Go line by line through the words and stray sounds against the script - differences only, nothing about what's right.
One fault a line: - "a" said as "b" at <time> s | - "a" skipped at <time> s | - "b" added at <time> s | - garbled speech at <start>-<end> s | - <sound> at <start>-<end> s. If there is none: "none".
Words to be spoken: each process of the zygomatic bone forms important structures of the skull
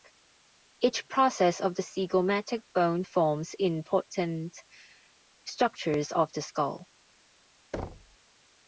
- thud at 7.7-8.2 s